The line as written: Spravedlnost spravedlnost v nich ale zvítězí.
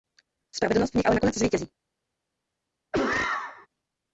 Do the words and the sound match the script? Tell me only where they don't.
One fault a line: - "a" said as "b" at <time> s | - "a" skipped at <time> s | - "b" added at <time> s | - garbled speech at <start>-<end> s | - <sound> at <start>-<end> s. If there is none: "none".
- "spravedlnost" skipped at 0.9 s
- "nakonec" added at 1.2 s
- cough at 2.9-3.7 s